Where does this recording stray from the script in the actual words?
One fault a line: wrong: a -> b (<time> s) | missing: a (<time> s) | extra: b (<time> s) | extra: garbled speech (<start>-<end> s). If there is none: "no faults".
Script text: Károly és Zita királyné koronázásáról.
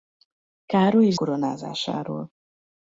missing: Zita királyné (1.1 s)